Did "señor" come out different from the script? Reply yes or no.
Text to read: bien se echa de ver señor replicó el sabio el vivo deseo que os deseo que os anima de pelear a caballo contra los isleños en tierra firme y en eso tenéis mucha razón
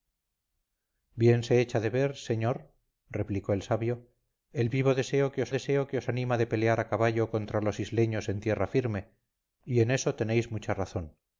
no